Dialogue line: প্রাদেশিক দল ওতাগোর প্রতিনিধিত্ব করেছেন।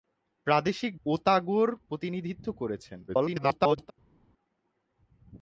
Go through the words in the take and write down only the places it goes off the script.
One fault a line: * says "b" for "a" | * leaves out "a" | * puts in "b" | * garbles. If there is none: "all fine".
* leaves out "দল"
* garbles